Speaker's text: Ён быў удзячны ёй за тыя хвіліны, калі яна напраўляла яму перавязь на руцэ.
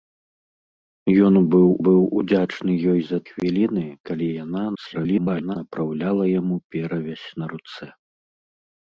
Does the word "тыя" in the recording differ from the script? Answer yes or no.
yes